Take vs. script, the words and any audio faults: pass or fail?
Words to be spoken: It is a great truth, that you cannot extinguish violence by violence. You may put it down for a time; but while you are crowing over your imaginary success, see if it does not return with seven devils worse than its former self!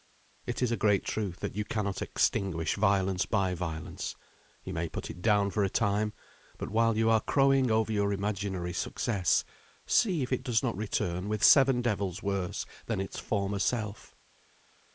pass